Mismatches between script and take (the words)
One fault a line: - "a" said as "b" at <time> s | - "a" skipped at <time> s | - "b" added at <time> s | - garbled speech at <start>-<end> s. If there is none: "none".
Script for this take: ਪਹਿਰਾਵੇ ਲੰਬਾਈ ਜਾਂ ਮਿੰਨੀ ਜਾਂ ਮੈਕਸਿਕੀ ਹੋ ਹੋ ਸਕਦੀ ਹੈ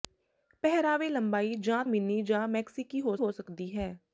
none